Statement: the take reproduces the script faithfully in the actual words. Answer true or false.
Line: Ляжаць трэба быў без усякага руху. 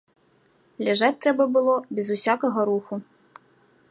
false